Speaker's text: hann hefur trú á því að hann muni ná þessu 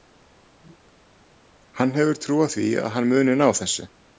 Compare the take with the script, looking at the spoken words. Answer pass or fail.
pass